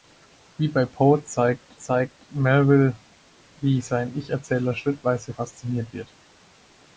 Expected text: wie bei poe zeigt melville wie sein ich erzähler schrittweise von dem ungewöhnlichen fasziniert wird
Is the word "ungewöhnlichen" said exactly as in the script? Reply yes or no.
no